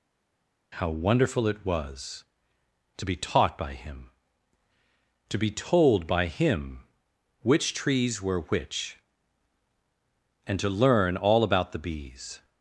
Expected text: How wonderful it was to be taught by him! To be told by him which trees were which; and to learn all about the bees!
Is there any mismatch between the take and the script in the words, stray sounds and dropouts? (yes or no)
no